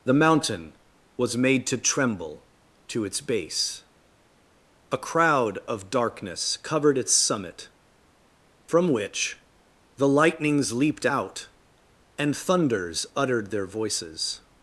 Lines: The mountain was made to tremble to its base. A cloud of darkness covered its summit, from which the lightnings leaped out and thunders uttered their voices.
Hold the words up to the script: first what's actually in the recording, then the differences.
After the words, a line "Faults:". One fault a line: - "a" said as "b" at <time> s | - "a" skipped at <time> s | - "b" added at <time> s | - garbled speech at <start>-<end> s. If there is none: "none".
The mountain was made to tremble to its base. A crowd of darkness covered its summit, from which the lightnings leaped out and thunders uttered their voices.
Faults:
- "cloud" said as "crowd" at 5.0 s